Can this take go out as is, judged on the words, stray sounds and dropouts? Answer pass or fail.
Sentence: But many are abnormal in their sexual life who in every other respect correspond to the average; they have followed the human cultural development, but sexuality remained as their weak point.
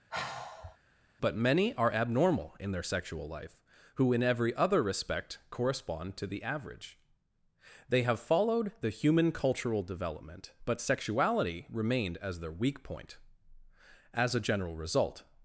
fail